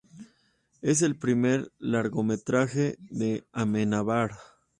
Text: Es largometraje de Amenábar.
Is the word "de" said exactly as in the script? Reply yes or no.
yes